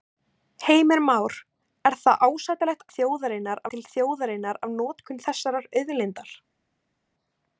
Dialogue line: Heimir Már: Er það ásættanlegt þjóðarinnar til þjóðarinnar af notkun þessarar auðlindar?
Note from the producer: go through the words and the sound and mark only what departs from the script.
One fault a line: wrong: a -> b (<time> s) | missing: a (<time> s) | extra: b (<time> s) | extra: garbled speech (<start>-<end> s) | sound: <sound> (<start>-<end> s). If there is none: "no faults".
no faults